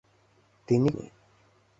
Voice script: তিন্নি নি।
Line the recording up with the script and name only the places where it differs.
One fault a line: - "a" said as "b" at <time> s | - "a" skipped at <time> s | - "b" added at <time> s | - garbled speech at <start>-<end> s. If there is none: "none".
none